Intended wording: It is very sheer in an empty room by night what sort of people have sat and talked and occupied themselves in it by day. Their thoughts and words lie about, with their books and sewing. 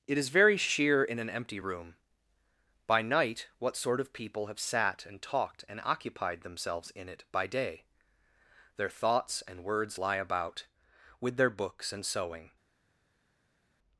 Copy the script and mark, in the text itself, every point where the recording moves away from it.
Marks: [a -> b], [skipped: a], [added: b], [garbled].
It is very sheer in an empty room by night what sort of people have sat and talked and occupied themselves in it by day. Their thoughts and words lie about, with their books and sewing.